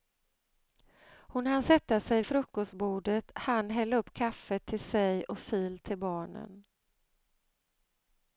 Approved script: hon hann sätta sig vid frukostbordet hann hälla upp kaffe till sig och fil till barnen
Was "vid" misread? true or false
true